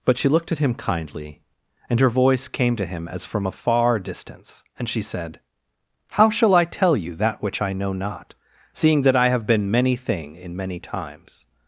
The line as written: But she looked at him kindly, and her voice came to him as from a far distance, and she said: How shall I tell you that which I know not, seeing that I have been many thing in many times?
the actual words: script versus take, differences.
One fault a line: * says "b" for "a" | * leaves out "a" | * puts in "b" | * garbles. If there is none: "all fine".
all fine